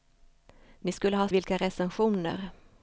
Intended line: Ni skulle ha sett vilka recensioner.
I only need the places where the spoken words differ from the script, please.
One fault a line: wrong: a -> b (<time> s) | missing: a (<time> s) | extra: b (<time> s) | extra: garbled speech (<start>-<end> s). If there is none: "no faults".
missing: sett (1.3 s)